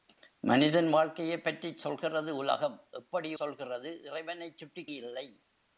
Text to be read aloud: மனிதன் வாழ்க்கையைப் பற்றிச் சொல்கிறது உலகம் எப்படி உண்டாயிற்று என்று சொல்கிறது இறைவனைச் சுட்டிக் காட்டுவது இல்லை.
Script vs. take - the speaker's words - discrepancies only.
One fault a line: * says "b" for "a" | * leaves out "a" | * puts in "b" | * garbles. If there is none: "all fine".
* leaves out "உண்டாயிற்று என்று"
* leaves out "காட்டுவது"